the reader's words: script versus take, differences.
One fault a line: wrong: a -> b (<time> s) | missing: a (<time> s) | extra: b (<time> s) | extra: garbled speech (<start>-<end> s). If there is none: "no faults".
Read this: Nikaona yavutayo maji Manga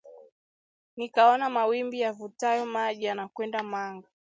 extra: mawimbi (1.5 s)
extra: yanakwenda (3.0 s)